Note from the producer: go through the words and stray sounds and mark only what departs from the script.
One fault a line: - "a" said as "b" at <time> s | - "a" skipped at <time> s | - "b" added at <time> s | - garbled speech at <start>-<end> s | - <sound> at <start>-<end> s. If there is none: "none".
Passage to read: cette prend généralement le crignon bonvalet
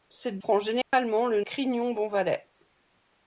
- dropout at 0.8-0.9 s